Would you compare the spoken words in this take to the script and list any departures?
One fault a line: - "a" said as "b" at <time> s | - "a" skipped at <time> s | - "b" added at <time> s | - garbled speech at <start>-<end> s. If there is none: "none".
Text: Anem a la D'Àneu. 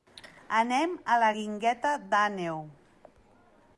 - "Guingueta" added at 1.4 s